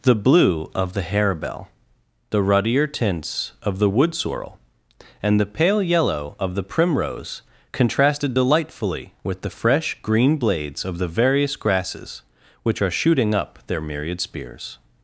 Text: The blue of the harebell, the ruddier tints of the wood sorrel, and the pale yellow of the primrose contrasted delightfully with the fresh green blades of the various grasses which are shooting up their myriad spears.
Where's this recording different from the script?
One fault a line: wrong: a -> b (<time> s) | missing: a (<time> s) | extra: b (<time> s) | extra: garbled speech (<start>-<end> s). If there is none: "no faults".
no faults